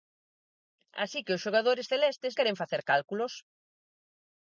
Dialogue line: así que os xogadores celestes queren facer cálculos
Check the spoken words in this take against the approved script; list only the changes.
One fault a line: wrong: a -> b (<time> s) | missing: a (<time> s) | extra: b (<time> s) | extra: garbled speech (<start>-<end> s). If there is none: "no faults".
no faults